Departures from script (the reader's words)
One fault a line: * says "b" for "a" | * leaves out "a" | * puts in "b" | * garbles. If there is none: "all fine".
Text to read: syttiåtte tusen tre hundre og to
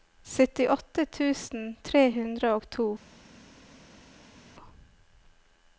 all fine